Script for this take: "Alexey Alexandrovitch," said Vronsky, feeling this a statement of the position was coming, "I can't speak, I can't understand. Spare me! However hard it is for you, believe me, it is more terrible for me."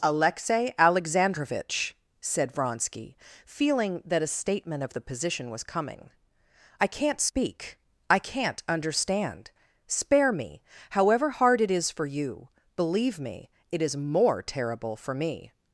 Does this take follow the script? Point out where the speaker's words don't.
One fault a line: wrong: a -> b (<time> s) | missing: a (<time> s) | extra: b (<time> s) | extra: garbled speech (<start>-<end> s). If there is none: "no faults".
wrong: this -> that (4.0 s)